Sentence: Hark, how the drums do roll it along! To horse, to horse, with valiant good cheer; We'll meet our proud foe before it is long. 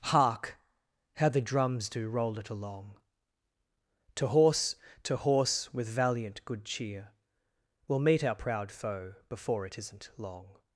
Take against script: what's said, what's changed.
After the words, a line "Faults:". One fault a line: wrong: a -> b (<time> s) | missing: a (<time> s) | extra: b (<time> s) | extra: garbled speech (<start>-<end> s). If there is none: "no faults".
Hark, how the drums do roll it along! To horse, to horse, with valiant good cheer; We'll meet our proud foe before it isn't long.
Faults:
wrong: is -> isn't (9.8 s)